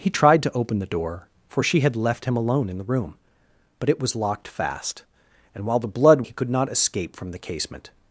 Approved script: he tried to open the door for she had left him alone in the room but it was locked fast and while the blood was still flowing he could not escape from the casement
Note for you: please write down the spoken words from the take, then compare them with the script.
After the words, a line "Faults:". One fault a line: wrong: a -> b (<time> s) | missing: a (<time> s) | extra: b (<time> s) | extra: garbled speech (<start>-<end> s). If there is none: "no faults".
he tried to open the door for she had left him alone in the room but it was locked fast and while the blood he could not escape from the casement
Faults:
missing: was still flowing (6.2 s)